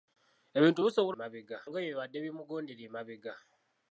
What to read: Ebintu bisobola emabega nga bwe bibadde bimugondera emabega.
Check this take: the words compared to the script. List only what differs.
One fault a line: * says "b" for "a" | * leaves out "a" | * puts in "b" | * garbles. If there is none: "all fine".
all fine